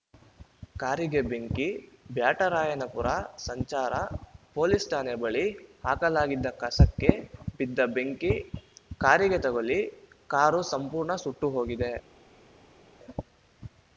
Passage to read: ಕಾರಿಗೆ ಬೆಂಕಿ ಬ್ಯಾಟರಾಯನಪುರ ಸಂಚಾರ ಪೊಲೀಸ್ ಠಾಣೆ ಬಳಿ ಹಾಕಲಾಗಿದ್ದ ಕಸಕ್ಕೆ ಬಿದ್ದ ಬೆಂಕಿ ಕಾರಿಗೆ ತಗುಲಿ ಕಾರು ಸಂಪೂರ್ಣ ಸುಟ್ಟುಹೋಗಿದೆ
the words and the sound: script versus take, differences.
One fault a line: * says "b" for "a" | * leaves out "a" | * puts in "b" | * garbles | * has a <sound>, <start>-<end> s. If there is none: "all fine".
all fine